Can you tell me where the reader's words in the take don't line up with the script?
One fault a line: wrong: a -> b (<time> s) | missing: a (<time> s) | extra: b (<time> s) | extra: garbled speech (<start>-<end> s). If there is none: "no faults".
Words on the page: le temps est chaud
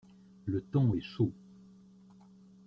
no faults